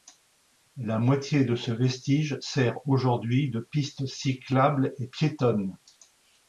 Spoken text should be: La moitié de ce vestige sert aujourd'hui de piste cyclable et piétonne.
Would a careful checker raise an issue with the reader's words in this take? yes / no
no